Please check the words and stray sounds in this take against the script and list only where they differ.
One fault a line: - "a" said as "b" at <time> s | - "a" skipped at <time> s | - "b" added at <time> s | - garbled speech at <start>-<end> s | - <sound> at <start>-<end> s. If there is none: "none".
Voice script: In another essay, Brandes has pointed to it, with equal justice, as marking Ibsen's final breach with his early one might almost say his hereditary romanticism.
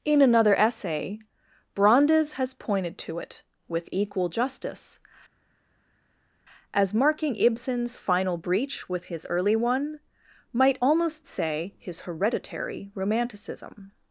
none